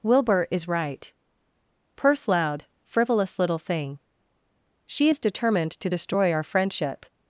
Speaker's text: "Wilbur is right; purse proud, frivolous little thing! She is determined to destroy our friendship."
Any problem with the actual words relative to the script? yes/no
yes